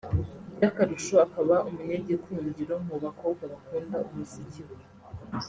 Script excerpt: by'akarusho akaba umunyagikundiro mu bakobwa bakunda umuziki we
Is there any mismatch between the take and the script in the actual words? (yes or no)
no